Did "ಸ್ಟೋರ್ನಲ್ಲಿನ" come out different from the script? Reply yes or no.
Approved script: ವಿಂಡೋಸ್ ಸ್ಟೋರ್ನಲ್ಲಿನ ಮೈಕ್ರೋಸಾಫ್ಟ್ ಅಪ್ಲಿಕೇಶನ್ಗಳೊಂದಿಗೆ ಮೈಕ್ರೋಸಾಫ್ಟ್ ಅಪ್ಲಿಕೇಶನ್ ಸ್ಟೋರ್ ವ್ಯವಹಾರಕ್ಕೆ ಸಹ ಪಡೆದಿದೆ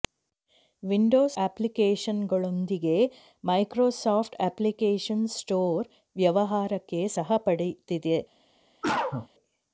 yes